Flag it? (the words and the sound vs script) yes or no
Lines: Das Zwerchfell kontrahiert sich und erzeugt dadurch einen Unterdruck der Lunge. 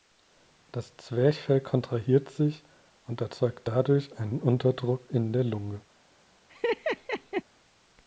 yes